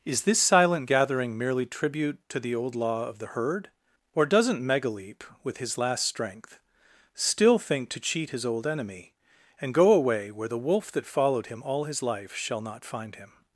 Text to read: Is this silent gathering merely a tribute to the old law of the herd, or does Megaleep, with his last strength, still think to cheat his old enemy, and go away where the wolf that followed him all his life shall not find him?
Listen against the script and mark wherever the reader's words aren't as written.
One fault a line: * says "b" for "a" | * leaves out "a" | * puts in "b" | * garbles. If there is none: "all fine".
* leaves out "a"
* says "doesn't" for "does"